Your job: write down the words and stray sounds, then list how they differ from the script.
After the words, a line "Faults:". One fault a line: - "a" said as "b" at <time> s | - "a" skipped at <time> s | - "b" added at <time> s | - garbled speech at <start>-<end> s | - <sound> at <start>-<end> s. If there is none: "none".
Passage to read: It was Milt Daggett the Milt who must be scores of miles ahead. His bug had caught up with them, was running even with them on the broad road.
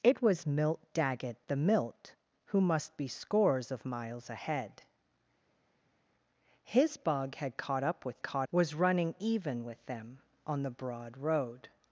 It was Milt Daggett the Milt who must be scores of miles ahead. His bug had caught up with caught, was running even with them on the broad road.
Faults:
- "them" said as "caught" at 8.2 s